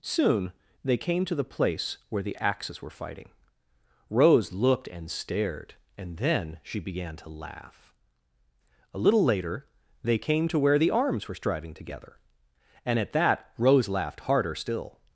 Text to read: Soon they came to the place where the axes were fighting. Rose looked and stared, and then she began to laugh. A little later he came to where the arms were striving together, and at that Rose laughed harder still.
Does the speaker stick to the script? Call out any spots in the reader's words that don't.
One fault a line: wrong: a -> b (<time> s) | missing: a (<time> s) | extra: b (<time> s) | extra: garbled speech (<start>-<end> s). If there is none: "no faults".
wrong: he -> they (10.0 s)